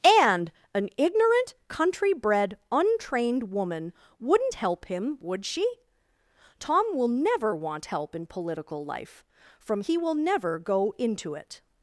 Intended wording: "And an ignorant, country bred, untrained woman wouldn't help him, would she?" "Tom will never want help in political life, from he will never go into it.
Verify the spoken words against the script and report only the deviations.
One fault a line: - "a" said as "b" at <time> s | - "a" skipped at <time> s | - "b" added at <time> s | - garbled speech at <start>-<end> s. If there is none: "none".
none